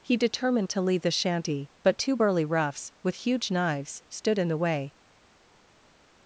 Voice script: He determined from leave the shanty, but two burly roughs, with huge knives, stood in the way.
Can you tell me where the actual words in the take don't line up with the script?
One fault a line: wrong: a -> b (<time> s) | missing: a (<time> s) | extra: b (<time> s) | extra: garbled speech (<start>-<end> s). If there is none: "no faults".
wrong: from -> to (0.7 s)